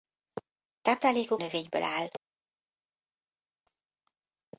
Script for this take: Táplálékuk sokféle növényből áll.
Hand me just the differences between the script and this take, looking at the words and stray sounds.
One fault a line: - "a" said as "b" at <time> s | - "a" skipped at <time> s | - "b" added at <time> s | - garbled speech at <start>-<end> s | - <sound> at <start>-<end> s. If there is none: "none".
- "sokféle" skipped at 1.4 s